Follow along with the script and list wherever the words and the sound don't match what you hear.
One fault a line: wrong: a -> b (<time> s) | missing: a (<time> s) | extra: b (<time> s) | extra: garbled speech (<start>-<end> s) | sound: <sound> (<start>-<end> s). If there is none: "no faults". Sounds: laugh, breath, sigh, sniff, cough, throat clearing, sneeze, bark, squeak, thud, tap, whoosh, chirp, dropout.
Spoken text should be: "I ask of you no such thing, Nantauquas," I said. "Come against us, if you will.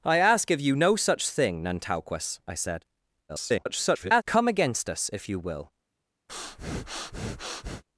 extra: garbled speech (3.3-4.2 s)
sound: breath (6.3-7.8 s)